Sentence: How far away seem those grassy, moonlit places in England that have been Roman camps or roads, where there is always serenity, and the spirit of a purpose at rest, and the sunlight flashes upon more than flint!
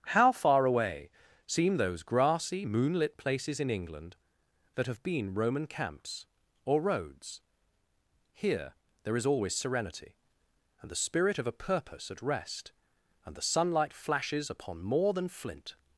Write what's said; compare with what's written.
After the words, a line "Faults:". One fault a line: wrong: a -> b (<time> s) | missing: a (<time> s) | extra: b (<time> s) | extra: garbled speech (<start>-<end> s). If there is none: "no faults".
How far away seem those grassy, moonlit places in England that have been Roman camps or roads, here there is always serenity, and the spirit of a purpose at rest, and the sunlight flashes upon more than flint!
Faults:
wrong: where -> here (8.3 s)